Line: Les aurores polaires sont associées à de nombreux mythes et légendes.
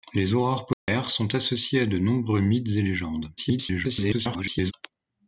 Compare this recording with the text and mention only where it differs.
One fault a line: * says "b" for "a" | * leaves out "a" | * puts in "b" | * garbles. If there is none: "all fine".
* garbles